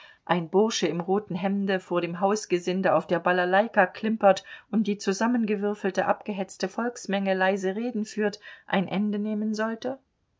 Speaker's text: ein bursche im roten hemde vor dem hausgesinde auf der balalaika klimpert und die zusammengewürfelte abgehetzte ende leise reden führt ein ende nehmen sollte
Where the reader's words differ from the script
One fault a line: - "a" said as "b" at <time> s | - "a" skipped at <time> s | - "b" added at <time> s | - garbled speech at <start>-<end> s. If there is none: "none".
- "ende" said as "volksmenge" at 6.7 s